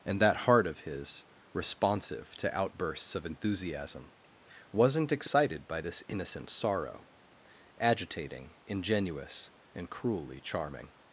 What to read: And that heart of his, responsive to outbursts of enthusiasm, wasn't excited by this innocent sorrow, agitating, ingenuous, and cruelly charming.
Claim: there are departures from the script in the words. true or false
false